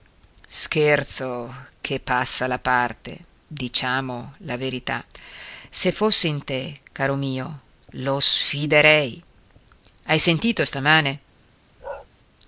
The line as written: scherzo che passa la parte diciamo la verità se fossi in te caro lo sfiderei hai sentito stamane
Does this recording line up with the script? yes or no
no